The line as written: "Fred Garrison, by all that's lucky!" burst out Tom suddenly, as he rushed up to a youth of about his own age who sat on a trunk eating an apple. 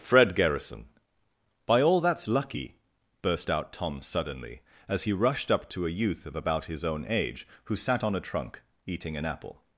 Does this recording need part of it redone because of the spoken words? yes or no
no